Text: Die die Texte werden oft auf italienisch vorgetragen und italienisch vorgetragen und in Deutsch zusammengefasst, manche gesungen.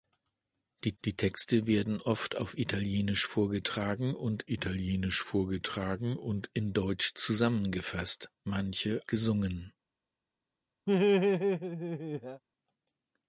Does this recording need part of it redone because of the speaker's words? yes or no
no